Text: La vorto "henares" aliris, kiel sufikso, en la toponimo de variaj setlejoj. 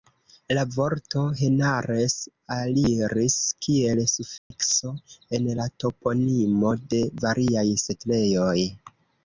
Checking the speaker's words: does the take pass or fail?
pass